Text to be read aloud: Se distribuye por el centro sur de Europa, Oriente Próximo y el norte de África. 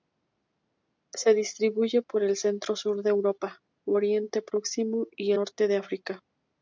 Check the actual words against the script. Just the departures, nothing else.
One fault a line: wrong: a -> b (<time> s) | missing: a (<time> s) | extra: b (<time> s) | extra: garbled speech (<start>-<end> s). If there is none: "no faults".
missing: el (5.3 s)